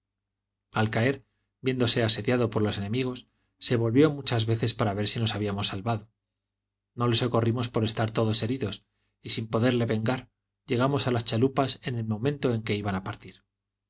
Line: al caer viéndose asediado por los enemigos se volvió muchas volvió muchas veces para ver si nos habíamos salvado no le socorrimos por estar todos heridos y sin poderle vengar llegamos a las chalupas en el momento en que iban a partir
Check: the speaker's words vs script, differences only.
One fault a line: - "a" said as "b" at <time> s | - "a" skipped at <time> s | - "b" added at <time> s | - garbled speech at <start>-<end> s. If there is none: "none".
- "volvió muchas" skipped at 4.5 s